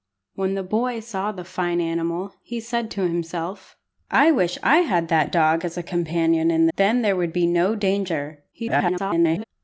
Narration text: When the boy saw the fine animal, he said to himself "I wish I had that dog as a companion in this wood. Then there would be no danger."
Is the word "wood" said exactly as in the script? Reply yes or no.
no